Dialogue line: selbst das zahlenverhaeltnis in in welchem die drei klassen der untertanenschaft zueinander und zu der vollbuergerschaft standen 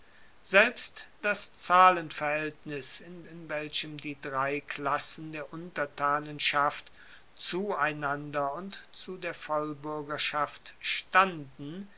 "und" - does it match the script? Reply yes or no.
yes